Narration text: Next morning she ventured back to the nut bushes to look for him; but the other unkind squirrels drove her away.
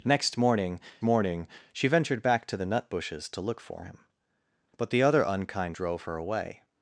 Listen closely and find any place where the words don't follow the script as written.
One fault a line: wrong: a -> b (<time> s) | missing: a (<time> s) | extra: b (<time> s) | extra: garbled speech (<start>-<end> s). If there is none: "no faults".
extra: morning (1.0 s)
missing: squirrels (5.8 s)